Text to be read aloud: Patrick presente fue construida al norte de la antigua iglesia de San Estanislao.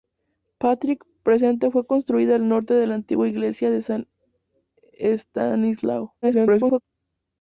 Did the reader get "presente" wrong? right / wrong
right